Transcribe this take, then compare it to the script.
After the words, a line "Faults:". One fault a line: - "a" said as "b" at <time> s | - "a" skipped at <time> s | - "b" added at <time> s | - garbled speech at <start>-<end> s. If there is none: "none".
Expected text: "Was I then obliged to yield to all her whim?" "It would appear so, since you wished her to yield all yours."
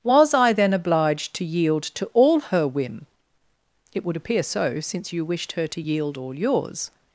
"Was I then obliged to yield to all her whim?" "It would appear so, since you wished her to yield all yours."
Faults:
none